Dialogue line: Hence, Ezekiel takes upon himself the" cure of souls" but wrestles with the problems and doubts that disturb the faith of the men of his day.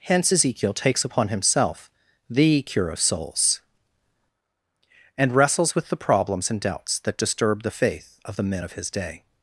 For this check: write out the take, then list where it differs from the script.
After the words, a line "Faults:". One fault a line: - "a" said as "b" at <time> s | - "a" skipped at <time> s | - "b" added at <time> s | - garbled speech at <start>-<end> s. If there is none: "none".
Hence, Ezekiel takes upon himself the" cure of souls" and wrestles with the problems and doubts that disturb the faith of the men of his day.
Faults:
- "but" said as "and" at 5.2 s